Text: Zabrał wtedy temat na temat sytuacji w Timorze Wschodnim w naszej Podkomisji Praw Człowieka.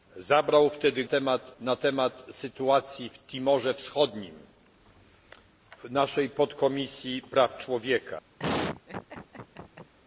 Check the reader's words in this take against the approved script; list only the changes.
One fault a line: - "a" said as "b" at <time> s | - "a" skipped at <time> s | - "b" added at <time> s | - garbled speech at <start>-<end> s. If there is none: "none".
none